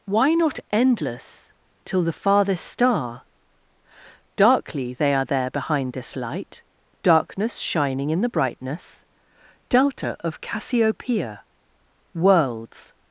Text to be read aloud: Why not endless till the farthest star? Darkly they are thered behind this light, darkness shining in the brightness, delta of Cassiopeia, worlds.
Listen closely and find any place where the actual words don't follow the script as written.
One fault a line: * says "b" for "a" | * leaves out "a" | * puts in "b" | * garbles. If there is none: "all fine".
* says "there" for "thered"